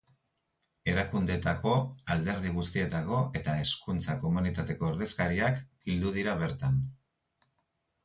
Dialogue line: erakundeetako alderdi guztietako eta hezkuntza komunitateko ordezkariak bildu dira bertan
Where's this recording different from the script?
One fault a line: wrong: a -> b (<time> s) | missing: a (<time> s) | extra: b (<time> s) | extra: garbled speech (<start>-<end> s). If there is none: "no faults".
no faults